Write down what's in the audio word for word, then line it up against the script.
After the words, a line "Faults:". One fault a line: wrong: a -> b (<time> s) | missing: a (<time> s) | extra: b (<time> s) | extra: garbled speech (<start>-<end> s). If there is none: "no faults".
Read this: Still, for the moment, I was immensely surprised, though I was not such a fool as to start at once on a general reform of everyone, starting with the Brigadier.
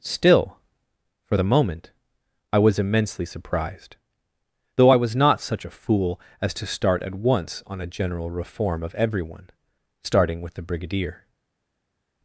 Still, for the moment, I was immensely surprised, though I was not such a fool as to start at once on a general reform of everyone, starting with the Brigadier.
Faults:
no faults